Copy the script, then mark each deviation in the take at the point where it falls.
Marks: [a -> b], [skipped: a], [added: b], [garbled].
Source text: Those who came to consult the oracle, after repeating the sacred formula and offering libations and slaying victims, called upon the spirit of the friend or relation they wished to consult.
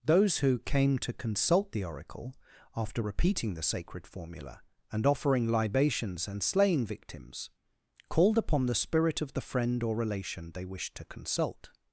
Those who came to consult the oracle, after repeating the sacred formula and offering libations and slaying victims, called upon the spirit of the friend or relation they wished to consult.